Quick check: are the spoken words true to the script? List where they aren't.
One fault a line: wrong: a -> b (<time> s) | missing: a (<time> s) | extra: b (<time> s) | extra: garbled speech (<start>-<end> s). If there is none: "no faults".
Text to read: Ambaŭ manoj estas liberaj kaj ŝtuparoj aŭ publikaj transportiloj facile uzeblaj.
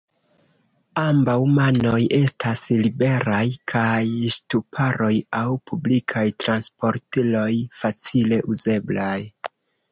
no faults